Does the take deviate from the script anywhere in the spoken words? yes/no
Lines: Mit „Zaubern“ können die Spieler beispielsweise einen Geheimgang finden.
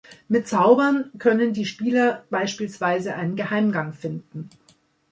no